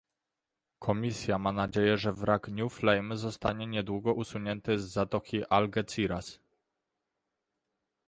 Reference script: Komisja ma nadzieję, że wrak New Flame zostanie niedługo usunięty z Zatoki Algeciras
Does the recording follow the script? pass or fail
pass